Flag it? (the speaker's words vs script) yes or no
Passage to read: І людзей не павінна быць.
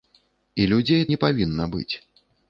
no